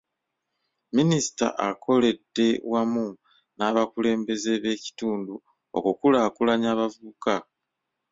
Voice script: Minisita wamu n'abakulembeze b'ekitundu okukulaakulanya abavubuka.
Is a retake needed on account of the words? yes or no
yes